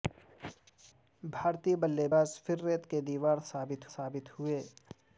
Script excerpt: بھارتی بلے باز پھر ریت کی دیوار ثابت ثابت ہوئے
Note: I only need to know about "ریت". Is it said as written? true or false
true